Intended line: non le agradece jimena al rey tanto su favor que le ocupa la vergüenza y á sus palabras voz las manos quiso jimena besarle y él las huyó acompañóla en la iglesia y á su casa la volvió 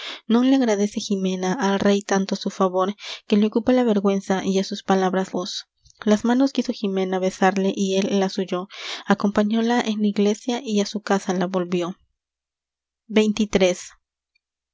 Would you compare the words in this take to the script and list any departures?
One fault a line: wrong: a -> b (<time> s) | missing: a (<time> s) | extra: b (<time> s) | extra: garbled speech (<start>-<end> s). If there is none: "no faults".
no faults